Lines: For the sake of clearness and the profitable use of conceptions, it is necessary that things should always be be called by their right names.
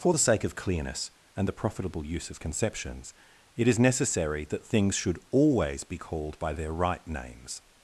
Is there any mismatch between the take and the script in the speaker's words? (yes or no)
yes